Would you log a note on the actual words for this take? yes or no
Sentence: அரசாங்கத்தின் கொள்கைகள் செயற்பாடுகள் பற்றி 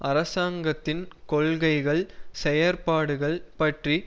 no